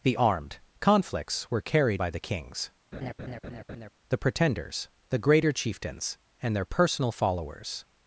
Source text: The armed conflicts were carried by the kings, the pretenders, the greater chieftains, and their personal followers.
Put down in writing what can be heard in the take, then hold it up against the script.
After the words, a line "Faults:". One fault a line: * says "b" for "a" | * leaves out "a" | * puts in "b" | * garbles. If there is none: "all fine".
The armed conflicts were carried by the kings, the pretenders, the greater chieftains, and their personal followers.
Faults:
all fine